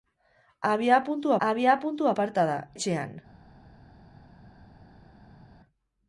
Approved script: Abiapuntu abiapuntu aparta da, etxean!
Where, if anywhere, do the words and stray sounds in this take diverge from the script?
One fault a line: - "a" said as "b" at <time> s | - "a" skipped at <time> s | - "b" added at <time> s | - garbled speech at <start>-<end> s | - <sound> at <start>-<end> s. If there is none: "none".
none